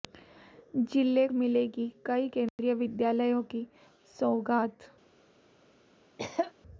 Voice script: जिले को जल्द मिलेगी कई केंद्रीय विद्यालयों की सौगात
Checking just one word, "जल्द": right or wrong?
wrong